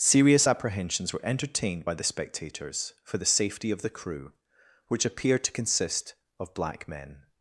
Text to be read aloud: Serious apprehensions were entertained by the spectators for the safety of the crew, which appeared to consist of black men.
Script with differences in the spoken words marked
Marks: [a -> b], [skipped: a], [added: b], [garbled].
Serious apprehensions were entertained by the spectators for the safety of the crew, which appeared to consist of black men.